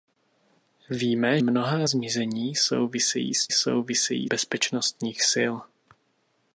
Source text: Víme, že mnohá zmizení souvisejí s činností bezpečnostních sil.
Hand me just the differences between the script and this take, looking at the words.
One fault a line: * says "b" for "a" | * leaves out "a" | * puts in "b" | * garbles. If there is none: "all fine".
* leaves out "že"
* says "souvisejí" for "činností"